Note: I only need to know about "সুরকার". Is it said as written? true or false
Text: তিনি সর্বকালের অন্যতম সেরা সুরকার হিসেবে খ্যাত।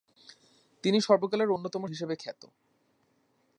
false